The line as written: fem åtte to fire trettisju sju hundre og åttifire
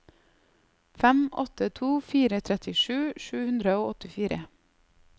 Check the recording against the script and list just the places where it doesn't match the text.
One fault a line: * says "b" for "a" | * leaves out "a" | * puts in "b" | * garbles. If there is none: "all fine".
all fine